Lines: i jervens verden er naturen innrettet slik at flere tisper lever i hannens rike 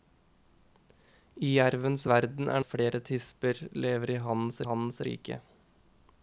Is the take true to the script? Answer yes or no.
no